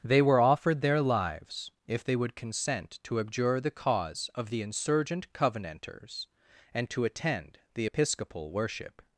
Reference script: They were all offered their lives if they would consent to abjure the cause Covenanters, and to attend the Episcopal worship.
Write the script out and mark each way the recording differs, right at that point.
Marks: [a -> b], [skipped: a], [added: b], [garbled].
They were [skipped: all] offered their lives if they would consent to abjure the cause [added: of the insurgent] Covenanters, and to attend the Episcopal worship.